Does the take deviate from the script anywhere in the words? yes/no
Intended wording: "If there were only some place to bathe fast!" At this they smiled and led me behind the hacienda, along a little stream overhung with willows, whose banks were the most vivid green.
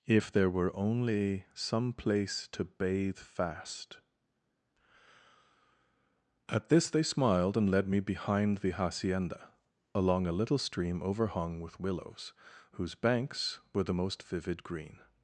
no